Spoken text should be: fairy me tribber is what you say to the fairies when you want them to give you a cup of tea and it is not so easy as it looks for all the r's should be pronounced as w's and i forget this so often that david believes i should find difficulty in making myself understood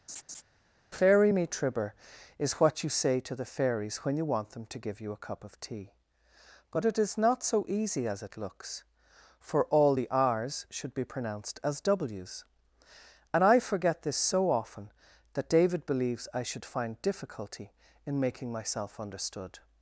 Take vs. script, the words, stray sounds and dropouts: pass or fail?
fail